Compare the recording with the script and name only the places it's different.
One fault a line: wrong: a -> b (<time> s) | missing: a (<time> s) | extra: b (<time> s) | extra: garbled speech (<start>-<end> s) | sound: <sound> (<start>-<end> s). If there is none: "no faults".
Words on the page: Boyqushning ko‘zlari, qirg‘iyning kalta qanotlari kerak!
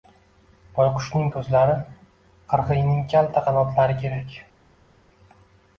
no faults